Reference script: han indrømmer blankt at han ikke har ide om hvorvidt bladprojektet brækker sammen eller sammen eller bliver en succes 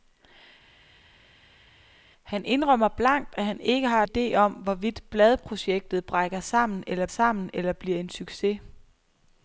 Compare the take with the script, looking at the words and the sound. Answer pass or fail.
pass